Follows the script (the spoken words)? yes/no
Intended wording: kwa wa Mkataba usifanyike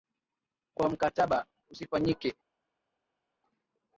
yes